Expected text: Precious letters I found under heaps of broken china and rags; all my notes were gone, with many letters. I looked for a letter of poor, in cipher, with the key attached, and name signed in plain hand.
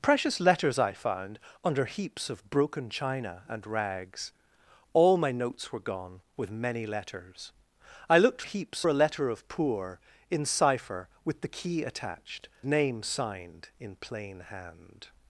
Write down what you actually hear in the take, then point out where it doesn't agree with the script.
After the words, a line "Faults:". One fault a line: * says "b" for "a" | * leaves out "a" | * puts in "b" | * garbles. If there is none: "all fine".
Precious letters I found under heaps of broken china and rags; all my notes were gone, with many letters. I looked heaps a letter of poor, in cipher, with the key attached, name signed in plain hand.
Faults:
* says "heaps" for "for"
* leaves out "and"